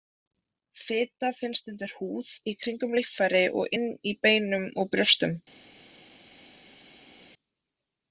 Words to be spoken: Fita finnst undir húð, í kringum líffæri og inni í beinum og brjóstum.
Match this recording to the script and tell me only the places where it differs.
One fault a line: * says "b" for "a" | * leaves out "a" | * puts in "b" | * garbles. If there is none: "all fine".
all fine